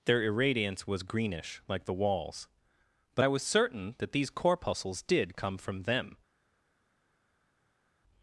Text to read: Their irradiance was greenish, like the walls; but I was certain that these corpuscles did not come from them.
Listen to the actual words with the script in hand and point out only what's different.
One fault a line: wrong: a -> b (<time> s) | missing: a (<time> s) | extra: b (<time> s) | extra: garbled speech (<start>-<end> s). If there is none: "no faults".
missing: not (5.4 s)